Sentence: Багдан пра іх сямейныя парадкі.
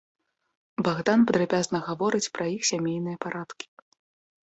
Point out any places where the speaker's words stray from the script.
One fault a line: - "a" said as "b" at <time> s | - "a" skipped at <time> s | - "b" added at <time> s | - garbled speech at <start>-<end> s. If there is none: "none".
- "падрабязна гаворыць" added at 1.3 s